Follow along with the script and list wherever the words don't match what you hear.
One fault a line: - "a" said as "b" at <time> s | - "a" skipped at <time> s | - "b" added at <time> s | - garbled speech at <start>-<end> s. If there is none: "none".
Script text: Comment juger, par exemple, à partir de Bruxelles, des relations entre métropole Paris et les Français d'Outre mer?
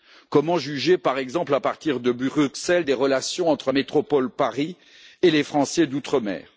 none